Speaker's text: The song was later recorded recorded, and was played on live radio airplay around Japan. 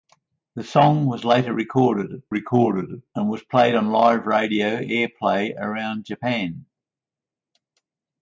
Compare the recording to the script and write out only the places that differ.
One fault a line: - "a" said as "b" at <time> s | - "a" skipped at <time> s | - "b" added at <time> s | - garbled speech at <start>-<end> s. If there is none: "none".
none